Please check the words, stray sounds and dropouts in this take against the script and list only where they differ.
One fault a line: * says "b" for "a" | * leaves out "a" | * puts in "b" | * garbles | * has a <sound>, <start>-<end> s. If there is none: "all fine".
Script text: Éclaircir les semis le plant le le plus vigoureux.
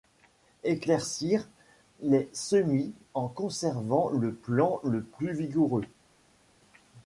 * puts in "en conservant"
* leaves out "le"